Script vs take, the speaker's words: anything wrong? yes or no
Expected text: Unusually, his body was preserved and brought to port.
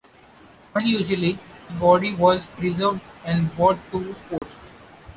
yes